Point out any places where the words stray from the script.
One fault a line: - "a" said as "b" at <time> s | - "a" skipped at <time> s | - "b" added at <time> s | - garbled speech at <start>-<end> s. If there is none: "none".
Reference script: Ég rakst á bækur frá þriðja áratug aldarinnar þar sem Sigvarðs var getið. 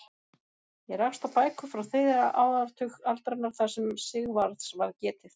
none